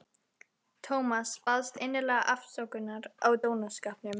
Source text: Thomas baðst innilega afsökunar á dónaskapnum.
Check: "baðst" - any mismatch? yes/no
no